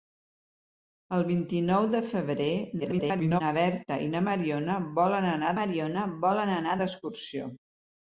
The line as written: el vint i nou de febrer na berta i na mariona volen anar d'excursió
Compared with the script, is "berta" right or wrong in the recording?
right